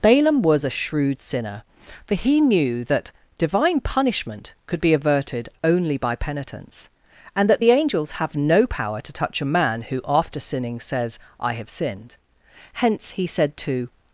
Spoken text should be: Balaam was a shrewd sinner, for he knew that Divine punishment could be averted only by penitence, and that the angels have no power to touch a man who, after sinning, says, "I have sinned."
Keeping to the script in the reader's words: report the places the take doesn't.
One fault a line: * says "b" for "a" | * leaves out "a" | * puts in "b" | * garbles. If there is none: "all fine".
* puts in "Hence he said to"